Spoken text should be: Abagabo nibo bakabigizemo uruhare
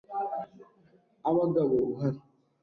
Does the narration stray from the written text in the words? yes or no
yes